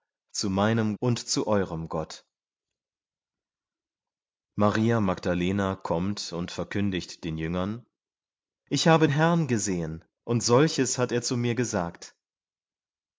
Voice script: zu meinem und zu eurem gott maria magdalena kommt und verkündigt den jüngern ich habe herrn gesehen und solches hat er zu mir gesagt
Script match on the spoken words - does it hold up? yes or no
yes